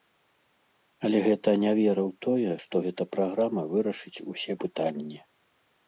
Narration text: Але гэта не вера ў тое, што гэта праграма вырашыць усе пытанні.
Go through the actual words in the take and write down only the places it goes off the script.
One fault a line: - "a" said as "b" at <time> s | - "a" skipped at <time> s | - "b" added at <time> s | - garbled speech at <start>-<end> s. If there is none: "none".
none